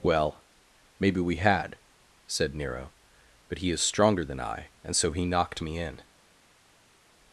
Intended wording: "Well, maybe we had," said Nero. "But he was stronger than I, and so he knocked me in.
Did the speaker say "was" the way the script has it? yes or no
no